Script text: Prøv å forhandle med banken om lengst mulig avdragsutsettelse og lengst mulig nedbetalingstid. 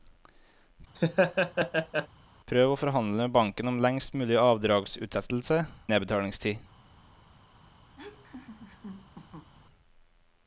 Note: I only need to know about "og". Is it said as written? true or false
false